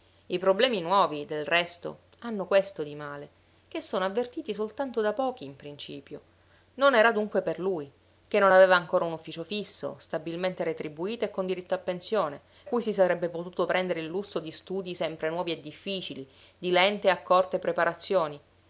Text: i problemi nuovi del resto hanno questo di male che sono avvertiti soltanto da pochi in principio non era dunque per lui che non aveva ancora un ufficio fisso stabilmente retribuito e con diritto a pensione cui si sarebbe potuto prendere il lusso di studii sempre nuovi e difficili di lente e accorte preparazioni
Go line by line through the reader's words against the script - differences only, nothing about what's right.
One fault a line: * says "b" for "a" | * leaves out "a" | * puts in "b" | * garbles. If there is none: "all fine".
all fine